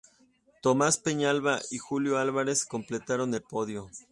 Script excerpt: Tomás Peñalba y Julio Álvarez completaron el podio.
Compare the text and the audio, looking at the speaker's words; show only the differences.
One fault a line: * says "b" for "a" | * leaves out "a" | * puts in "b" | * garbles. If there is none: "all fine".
all fine